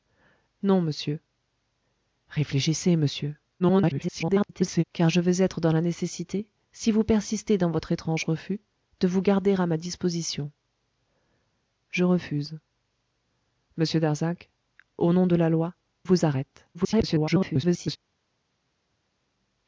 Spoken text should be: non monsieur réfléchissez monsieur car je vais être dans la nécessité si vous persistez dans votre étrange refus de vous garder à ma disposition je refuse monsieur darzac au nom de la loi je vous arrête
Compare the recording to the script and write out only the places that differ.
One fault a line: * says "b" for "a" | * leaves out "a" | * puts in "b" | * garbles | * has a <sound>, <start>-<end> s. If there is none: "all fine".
* garbles
* leaves out "je"
* garbles